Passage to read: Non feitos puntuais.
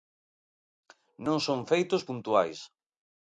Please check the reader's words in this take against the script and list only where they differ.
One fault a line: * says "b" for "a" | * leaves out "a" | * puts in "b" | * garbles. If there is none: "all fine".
* puts in "son"